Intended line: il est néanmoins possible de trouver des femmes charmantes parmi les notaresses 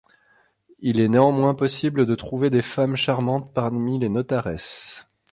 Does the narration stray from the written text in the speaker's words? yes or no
no